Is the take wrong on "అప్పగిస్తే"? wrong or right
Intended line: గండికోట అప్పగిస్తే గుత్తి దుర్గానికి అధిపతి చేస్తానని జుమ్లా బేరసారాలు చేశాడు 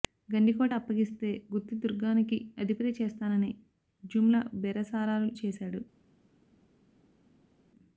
right